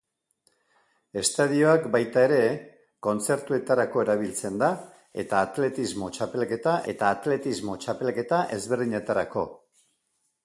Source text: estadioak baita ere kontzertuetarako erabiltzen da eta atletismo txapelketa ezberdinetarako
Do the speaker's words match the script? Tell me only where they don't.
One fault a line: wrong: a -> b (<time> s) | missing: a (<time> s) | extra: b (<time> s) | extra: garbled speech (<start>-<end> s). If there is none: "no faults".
extra: eta atletismo txapelketa (6.9 s)